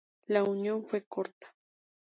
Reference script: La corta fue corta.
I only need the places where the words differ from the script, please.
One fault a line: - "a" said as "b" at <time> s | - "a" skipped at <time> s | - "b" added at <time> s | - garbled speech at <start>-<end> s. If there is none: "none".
- "corta" said as "unión" at 0.4 s